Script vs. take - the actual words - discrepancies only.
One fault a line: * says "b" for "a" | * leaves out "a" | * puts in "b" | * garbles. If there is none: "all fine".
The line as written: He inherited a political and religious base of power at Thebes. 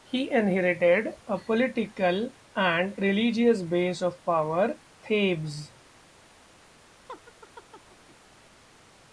* leaves out "at"